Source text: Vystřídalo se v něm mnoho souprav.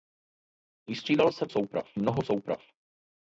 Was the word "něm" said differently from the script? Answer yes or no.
yes